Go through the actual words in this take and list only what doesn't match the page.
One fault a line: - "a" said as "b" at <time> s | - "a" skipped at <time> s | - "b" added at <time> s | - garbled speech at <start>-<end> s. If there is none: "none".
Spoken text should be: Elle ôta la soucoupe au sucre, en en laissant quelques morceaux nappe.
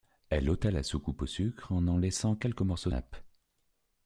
none